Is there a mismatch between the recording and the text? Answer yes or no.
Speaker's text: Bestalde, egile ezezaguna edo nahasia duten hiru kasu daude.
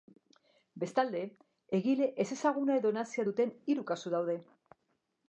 no